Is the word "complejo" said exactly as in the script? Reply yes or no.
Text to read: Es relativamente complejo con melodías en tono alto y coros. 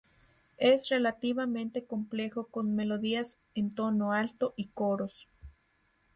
yes